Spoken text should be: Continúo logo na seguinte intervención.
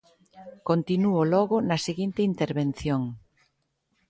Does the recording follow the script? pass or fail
pass